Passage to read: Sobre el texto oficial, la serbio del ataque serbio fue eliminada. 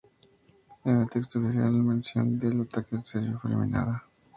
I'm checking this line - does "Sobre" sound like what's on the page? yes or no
no